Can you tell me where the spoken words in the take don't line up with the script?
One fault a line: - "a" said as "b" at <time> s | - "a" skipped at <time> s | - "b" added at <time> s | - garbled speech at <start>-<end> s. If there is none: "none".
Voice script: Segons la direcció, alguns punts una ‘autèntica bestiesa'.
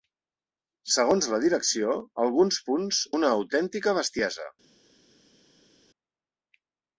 none